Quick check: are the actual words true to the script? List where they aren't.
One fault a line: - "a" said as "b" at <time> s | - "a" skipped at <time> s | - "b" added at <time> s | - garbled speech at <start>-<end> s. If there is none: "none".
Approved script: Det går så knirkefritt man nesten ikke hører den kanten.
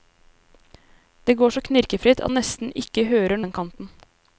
none